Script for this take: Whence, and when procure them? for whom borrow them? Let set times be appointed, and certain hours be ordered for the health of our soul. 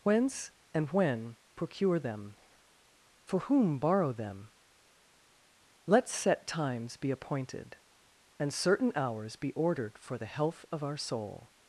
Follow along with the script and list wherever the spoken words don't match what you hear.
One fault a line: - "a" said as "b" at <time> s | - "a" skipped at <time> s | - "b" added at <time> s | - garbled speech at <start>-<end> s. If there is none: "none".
none